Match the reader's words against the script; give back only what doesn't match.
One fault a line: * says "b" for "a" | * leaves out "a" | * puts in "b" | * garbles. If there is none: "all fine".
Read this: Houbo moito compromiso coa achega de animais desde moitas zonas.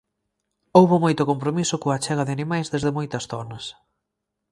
all fine